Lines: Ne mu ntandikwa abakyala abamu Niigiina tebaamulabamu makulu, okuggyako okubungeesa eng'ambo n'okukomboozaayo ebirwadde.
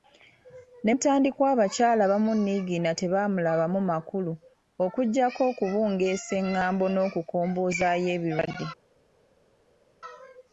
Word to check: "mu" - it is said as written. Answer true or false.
false